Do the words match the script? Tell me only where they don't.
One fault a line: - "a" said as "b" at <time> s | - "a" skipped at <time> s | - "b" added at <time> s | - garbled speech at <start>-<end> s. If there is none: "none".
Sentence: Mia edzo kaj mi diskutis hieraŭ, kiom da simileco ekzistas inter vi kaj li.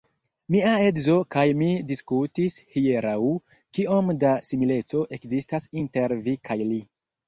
none